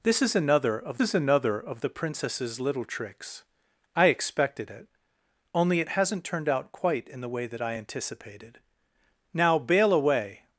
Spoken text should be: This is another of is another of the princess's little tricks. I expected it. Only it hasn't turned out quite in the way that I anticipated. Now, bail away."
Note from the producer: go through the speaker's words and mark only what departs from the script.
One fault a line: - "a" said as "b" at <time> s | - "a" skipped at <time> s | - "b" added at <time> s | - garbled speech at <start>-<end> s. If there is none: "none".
none